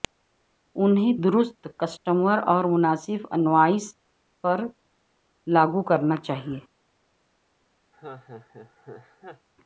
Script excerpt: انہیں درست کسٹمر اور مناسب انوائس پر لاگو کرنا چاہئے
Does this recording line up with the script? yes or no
yes